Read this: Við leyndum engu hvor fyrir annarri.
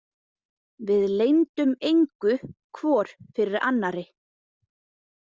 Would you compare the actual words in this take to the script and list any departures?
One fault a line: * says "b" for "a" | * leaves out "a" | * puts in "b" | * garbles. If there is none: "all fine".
all fine